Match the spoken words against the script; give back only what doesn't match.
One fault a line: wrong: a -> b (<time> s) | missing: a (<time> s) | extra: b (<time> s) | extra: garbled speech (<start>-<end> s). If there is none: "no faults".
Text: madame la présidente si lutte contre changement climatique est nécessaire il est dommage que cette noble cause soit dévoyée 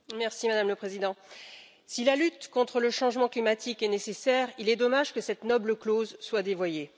extra: la (2.0 s)
extra: le (2.8 s)